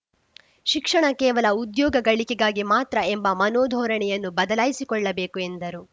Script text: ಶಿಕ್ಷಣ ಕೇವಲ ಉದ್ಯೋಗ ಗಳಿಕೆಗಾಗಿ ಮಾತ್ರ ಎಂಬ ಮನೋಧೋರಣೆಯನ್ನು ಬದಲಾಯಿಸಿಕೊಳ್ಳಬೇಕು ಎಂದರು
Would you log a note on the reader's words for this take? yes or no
no